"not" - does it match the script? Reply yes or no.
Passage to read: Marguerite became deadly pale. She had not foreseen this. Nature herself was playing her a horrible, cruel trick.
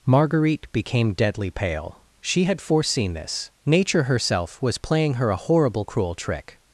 no